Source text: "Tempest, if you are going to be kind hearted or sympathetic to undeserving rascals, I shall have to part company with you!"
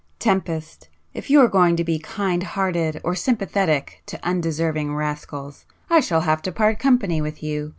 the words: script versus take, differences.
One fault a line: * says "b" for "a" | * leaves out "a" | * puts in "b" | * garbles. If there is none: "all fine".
all fine